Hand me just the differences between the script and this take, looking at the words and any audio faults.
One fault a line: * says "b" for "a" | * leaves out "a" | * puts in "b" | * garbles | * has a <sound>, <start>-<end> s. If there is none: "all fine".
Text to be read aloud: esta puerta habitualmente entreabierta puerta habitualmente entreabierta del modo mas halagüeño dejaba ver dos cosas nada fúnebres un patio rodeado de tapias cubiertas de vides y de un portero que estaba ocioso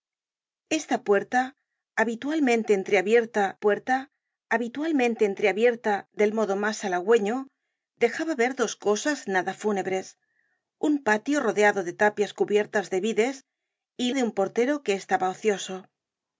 all fine